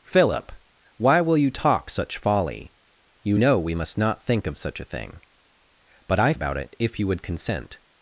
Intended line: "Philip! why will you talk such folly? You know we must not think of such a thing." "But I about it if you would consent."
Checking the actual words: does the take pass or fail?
pass